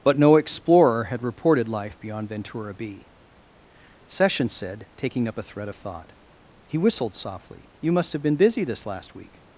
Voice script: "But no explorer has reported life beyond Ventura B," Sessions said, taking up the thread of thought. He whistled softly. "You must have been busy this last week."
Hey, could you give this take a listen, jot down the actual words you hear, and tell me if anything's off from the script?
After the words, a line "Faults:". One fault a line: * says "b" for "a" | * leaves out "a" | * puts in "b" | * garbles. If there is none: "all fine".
"But no explorer had reported life beyond Ventura B," Sessions said, taking up a thread of thought. He whistled softly. "You must have been busy this last week."
Faults:
* says "had" for "has"
* says "a" for "the"